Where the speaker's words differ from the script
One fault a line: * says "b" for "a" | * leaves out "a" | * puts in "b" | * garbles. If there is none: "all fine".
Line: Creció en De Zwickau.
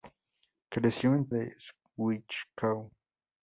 all fine